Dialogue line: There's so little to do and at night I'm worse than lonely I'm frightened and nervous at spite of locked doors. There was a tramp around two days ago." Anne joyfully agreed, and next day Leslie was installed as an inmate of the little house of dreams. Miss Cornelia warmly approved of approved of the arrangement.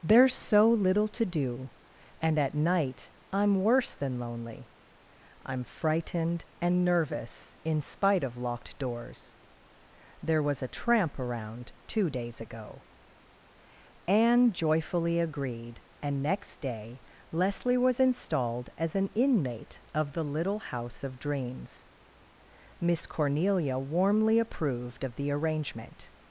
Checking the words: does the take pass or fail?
fail